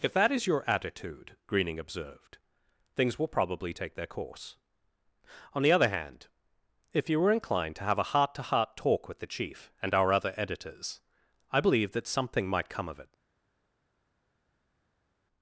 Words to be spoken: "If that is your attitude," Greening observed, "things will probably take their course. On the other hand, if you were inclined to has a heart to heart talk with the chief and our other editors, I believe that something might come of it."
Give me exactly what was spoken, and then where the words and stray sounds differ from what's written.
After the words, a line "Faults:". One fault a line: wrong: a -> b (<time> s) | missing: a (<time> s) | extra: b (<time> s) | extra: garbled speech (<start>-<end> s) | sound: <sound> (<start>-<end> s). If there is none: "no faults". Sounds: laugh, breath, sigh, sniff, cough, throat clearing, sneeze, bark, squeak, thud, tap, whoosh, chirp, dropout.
"If that is your attitude," Greening observed, "things will probably take their course. On the other hand, if you were inclined to have a heart to heart talk with the chief and our other editors, I believe that something might come of it."
Faults:
wrong: has -> have (7.8 s)